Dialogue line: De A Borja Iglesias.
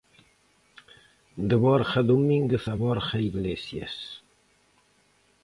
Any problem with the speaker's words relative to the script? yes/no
yes